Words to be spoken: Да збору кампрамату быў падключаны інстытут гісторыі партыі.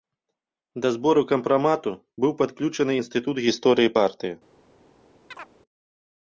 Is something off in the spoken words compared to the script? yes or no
no